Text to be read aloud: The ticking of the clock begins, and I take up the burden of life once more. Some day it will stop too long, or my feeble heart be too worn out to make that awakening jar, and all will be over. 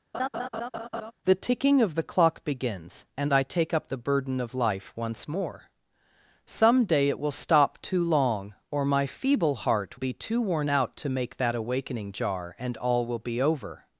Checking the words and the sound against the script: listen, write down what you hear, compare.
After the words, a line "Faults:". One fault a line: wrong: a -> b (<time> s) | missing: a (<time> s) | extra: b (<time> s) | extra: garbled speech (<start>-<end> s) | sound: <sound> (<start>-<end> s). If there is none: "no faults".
The ticking of the clock begins, and I take up the burden of life once more. Some day it will stop too long, or my feeble heart be too worn out to make that awakening jar, and all will be over.
Faults:
sound: laugh (0.1-1.1 s)